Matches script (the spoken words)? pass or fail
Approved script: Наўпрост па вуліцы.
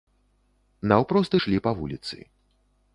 fail